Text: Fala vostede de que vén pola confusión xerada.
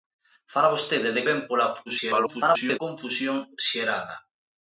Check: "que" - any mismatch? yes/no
yes